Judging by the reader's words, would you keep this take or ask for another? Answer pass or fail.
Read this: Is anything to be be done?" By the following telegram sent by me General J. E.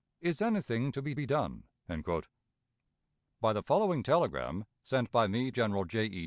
pass